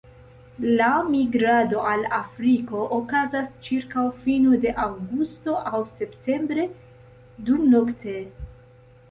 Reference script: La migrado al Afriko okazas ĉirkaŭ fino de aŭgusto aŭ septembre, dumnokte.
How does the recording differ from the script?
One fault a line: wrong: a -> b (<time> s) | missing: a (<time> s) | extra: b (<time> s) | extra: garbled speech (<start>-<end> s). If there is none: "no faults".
no faults